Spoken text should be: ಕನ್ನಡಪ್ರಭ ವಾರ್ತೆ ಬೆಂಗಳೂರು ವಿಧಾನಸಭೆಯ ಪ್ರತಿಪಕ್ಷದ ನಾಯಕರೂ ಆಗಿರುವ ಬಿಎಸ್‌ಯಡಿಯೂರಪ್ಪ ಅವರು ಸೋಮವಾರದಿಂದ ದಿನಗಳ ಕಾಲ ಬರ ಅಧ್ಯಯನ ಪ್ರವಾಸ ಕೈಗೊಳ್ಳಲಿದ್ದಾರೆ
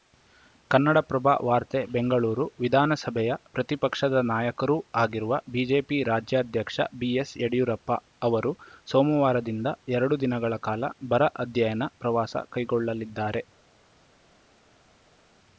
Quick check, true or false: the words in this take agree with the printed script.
false